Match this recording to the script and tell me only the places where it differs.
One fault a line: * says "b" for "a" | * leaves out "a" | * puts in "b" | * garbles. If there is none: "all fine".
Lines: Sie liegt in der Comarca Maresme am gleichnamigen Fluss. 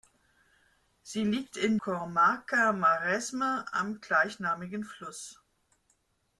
* leaves out "der"